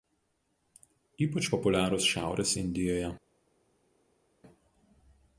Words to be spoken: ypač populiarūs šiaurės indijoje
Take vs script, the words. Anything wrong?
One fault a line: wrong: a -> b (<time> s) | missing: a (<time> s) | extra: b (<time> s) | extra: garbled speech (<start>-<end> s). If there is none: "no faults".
no faults